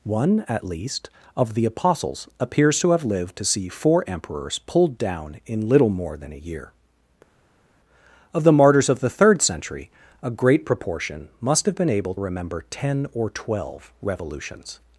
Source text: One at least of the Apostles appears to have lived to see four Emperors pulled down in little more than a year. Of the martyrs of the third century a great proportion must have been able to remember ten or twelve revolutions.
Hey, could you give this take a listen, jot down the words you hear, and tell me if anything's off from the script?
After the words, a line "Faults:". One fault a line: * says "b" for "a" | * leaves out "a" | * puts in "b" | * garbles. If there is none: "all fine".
One at least of the Apostles appears to have lived to see four Emperors pulled down in little more than a year. Of the martyrs of the third century a great proportion must have been able remember ten or twelve revolutions.
Faults:
* leaves out "to"